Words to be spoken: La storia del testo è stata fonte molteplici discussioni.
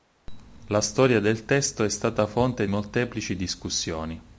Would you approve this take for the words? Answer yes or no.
yes